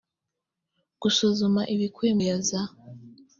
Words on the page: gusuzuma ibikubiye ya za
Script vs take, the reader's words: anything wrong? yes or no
no